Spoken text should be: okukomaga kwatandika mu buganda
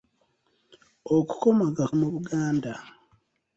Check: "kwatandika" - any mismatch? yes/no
yes